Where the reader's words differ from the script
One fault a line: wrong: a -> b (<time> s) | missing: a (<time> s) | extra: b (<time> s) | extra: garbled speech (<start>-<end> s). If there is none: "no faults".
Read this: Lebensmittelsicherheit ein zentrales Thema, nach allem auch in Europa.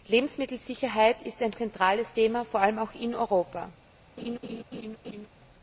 extra: ist (1.2 s)
wrong: nach -> vor (2.4 s)